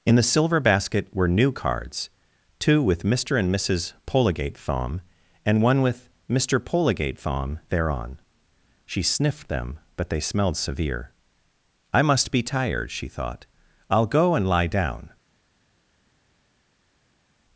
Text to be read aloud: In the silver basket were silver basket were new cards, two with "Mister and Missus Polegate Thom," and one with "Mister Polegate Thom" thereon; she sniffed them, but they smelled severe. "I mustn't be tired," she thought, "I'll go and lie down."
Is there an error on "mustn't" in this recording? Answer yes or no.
yes